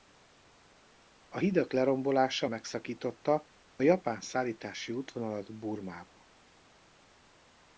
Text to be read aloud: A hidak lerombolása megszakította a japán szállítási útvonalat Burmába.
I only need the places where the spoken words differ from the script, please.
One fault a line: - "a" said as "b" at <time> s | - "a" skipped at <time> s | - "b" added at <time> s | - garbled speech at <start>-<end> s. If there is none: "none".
none